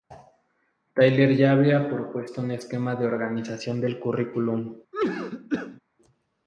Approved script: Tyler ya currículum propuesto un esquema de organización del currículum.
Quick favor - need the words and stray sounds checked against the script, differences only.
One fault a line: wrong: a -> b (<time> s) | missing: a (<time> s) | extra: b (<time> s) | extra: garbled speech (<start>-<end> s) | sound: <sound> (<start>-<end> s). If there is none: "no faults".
wrong: currículum -> había (1.5 s)
sound: cough (4.9-5.8 s)